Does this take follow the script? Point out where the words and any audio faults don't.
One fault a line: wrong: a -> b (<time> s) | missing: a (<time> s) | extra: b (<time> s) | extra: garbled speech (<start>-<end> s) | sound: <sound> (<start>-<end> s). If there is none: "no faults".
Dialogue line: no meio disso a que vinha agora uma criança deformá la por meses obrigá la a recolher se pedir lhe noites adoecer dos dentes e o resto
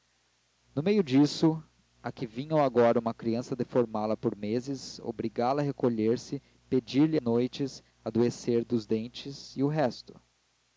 no faults